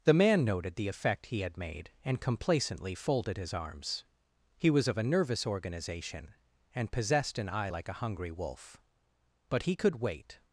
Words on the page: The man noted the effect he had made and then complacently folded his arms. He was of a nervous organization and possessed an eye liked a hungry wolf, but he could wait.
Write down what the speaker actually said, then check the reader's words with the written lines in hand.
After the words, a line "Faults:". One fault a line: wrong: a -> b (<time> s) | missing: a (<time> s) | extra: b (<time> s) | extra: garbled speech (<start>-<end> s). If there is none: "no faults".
The man noted the effect he had made and complacently folded his arms. He was of a nervous organization and possessed an eye like a hungry wolf, but he could wait.
Faults:
missing: then (2.2 s)
wrong: liked -> like (7.7 s)